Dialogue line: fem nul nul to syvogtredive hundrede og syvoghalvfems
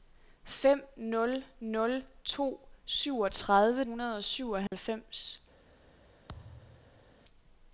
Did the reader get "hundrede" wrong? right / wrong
right